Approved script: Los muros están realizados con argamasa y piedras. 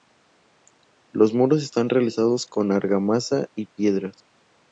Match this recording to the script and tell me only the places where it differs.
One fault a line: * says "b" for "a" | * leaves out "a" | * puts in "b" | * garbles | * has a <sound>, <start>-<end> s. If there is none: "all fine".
all fine